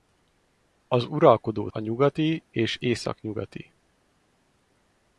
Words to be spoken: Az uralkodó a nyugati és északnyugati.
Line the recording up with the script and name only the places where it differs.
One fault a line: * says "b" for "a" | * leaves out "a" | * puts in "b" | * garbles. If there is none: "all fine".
all fine